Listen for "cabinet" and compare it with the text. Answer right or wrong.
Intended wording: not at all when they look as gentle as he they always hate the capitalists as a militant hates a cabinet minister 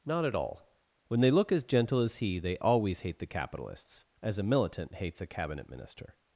right